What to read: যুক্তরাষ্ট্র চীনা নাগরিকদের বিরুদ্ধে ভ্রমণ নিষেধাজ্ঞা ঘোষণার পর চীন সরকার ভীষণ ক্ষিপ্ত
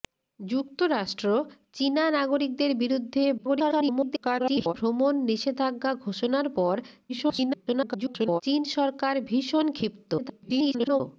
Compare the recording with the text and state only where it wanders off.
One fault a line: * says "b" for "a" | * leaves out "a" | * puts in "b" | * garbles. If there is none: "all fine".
* garbles
* garbles
* garbles